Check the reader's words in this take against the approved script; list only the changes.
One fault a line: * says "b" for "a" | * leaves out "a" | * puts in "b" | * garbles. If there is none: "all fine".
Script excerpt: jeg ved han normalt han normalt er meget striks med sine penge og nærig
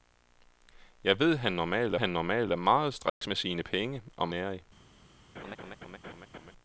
all fine